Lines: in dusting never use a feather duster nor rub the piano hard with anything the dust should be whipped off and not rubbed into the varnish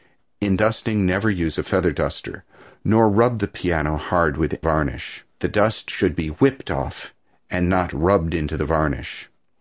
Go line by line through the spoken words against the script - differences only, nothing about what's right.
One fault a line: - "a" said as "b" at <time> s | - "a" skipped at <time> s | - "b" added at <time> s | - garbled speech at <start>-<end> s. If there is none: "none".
- "anything" said as "varnish" at 4.6 s